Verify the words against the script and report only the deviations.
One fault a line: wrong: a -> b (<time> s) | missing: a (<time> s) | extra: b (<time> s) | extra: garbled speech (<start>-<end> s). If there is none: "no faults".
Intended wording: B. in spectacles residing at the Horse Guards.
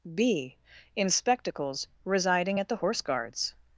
no faults